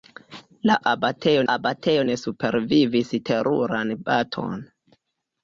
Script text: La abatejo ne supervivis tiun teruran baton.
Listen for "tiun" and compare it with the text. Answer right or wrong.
wrong